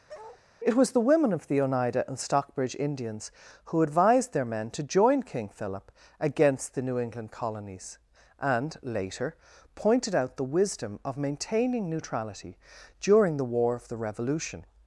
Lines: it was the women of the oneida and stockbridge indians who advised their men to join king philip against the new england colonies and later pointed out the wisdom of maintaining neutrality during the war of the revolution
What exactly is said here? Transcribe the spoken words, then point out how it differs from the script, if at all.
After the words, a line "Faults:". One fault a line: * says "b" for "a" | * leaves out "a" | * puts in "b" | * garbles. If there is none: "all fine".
it was the women of the oneida and stockbridge indians who advised their men to join king philip against the new england colonies and later pointed out the wisdom of maintaining neutrality during the war of the revolution
Faults:
all fine